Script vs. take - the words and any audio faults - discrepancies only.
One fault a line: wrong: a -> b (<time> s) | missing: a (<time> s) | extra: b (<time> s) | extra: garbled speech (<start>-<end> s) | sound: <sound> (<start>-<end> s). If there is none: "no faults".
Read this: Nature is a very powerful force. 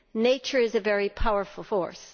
no faults